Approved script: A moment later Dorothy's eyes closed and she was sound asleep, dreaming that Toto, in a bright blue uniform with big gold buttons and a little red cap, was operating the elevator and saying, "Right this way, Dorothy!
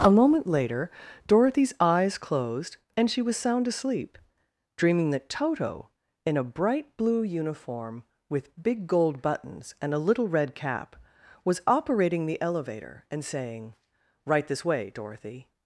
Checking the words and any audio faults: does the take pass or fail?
pass